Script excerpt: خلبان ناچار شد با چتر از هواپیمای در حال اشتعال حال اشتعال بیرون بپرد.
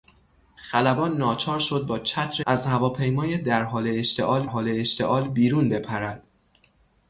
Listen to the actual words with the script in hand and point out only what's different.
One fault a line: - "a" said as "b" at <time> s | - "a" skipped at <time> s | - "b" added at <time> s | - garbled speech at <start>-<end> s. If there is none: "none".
none